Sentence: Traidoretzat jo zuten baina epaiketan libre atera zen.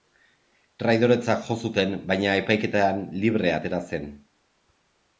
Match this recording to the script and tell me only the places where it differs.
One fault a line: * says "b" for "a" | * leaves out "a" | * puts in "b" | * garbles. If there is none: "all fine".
all fine